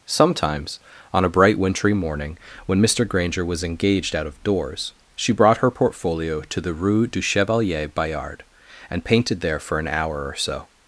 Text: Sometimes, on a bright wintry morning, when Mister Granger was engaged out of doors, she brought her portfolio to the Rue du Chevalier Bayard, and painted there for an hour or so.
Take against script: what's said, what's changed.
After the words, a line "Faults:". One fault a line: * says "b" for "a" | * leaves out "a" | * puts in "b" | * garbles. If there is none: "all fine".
Sometimes, on a bright wintry morning, when Mister Granger was engaged out of doors, she brought her portfolio to the Rue du Chevalier Bayard, and painted there for an hour or so.
Faults:
all fine